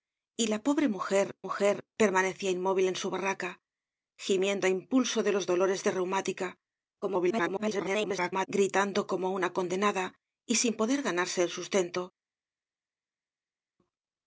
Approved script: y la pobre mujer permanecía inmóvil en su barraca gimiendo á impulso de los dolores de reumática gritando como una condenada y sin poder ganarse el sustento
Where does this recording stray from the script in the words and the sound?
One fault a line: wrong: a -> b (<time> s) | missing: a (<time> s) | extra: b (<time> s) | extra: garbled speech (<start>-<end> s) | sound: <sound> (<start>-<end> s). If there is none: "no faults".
extra: mujer (1.4 s)
extra: garbled speech (7.0-8.5 s)